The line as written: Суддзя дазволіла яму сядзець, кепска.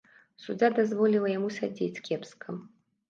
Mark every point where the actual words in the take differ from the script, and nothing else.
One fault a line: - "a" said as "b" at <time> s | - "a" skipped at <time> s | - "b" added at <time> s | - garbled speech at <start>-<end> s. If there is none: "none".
none